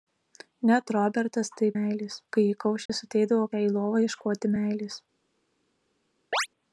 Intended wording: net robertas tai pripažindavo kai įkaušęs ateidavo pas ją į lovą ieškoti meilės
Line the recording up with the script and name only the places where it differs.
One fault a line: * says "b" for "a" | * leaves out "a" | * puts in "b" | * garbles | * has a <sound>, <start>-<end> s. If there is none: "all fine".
* says "meilės" for "pripažindavo"
* has a dropout, 2.9-2.9 s
* leaves out "pas"
* has a chirp, 6.3-6.5 s